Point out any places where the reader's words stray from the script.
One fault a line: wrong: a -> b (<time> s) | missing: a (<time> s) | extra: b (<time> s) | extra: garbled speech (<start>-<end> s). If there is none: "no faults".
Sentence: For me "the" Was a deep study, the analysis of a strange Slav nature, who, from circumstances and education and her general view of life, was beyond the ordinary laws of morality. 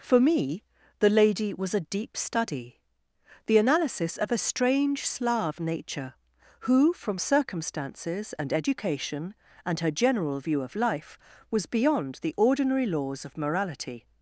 extra: Lady (1.1 s)